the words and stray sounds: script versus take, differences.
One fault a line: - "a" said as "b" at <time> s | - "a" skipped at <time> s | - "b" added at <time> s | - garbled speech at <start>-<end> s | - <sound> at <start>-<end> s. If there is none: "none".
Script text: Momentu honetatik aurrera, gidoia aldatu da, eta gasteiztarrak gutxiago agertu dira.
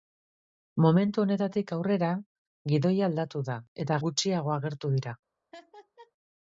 - "gasteiztarrak" skipped at 4.0 s
- laugh at 5.5-6.1 s